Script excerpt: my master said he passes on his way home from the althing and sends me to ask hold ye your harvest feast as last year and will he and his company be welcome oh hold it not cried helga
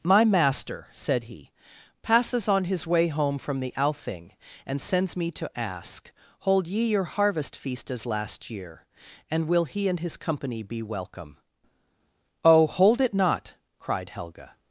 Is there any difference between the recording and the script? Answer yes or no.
no